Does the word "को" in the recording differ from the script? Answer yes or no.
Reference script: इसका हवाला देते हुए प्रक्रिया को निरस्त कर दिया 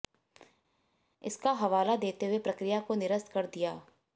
no